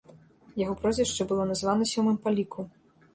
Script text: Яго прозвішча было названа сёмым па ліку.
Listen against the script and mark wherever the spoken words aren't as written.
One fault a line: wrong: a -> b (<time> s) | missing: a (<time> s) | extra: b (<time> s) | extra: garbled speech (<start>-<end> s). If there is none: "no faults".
no faults